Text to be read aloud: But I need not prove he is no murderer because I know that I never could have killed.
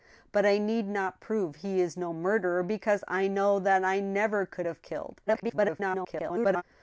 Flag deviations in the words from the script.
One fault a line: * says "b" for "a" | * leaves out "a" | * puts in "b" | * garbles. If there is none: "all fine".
* garbles